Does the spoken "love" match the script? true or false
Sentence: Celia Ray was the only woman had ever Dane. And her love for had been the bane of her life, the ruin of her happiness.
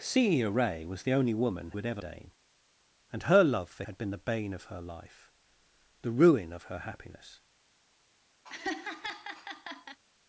true